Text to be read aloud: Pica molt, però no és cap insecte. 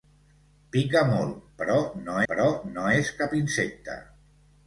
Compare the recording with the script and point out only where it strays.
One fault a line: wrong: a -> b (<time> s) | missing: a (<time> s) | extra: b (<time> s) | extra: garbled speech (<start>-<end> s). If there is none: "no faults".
extra: però no (2.3 s)